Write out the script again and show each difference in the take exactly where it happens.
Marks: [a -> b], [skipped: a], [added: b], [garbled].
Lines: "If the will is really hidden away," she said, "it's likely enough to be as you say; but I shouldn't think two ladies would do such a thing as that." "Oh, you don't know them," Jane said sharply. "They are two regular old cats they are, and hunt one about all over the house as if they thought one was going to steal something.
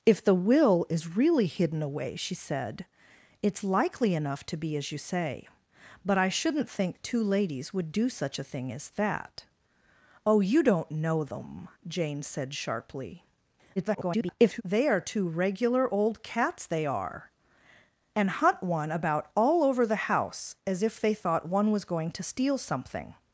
"If the will is really hidden away," she said, "it's likely enough to be as you say; but I shouldn't think two ladies would do such a thing as that." "Oh, you don't know them," Jane said sharply. [garbled] "They are two regular old cats they are, and hunt one about all over the house as if they thought one was going to steal something.